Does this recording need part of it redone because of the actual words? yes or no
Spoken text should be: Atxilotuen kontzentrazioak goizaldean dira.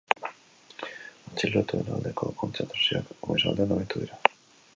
yes